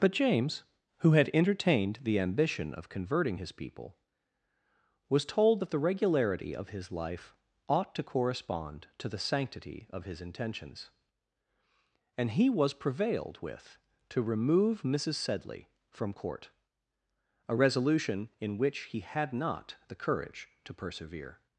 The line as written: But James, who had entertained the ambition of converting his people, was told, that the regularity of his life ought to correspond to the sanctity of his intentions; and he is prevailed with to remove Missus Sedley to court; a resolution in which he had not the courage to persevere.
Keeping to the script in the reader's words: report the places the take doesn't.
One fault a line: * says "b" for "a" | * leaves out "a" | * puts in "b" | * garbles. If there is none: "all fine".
* says "was" for "is"
* says "from" for "to"